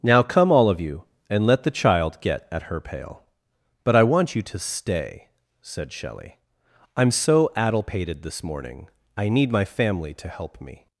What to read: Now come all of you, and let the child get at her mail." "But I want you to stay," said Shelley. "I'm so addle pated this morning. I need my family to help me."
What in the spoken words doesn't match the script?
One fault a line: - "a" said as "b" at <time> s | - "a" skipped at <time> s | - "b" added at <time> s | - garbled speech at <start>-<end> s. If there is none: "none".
- "mail" said as "pail" at 2.8 s